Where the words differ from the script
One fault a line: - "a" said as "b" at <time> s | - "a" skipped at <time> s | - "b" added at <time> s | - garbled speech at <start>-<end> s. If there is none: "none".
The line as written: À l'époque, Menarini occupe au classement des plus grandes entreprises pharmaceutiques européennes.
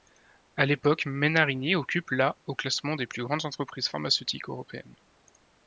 - "la" added at 2.1 s